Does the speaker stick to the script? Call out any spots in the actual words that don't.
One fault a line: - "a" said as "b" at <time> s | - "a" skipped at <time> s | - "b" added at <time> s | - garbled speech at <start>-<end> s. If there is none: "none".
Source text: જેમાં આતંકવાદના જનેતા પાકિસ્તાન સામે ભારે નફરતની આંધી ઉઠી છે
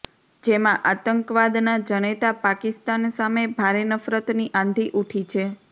none